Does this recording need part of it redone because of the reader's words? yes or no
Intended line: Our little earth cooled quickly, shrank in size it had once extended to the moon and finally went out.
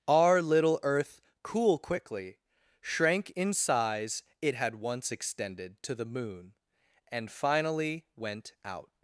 yes